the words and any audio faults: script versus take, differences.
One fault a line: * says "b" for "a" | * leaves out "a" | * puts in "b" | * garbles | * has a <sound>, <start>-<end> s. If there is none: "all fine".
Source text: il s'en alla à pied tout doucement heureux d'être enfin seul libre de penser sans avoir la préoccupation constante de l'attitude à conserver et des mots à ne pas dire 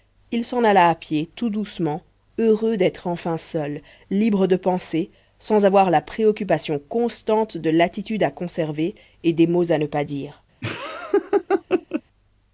* has a laugh, 10.6-12.0 s